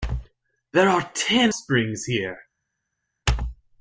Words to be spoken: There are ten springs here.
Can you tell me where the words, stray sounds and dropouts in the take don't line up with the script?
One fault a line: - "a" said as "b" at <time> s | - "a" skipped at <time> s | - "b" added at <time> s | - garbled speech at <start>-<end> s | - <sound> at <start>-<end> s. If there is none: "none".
none